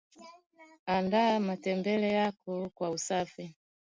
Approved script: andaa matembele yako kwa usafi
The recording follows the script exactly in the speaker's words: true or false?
true